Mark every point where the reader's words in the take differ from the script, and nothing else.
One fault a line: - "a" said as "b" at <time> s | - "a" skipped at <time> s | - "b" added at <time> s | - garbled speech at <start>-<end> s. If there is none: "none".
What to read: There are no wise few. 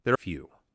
- "are no wise" skipped at 0.2 s